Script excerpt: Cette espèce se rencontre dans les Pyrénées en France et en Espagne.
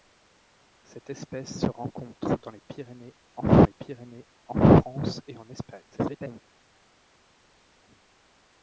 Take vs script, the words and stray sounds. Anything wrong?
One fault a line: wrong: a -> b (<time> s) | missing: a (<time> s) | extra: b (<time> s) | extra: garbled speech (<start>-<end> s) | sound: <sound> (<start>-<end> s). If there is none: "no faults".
extra: les Pyrénées en (3.6 s)
extra: garbled speech (5.9-6.4 s)